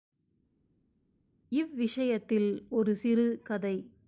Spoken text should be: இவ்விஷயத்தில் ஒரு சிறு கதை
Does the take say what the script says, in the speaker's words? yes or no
yes